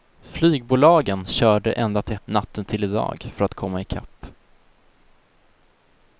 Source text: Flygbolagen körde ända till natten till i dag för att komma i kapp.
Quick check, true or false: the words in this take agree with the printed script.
true